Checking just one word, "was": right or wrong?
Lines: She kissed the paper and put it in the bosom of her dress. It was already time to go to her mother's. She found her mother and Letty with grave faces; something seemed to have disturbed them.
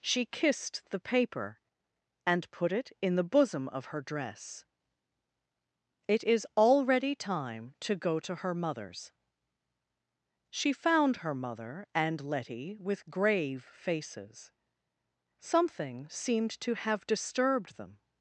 wrong